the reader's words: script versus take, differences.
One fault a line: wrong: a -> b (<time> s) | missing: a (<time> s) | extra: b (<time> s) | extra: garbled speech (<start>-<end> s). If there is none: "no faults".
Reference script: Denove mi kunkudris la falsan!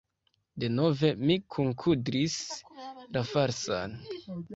no faults